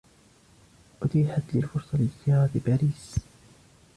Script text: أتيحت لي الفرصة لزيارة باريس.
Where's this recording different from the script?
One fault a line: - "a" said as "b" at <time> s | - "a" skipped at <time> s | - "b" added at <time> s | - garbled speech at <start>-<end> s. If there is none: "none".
none